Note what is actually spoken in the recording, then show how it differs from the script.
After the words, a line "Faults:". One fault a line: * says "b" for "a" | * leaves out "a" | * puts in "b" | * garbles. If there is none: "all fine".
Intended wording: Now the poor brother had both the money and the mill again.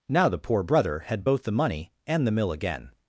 Now the poor brother had both the money and the mill again.
Faults:
all fine